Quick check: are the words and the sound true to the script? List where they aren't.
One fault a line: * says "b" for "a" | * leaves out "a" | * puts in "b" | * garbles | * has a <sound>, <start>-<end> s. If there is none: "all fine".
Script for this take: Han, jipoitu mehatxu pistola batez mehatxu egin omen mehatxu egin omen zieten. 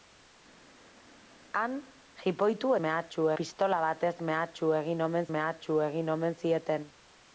all fine